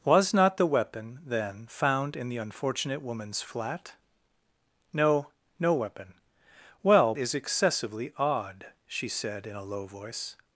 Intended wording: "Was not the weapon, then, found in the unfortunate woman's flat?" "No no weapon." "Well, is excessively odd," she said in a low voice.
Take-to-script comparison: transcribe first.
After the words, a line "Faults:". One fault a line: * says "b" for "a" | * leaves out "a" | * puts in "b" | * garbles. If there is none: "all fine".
"Was not the weapon, then, found in the unfortunate woman's flat?" "No no weapon." "Well, is excessively odd," she said in a low voice.
Faults:
all fine